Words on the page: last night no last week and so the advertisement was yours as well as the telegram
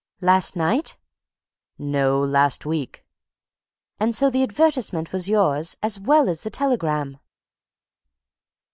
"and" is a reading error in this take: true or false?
false